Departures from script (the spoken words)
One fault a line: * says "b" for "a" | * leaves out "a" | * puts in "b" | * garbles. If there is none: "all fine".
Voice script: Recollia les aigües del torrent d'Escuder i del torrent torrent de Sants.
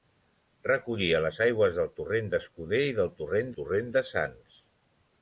all fine